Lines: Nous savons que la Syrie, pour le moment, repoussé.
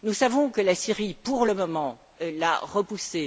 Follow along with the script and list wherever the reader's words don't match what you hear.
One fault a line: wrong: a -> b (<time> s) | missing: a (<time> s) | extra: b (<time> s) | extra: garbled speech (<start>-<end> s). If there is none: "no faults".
extra: l'a (2.2 s)